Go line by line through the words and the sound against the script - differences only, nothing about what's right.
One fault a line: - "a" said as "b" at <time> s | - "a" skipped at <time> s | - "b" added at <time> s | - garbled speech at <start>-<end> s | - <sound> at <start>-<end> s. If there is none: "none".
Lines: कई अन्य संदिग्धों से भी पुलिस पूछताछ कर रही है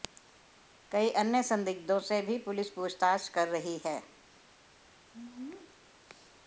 none